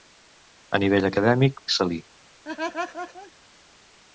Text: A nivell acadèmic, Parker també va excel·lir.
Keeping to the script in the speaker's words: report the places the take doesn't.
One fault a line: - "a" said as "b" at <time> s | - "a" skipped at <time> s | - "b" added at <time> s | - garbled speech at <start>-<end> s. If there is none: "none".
- "Parker també va" skipped at 1.6 s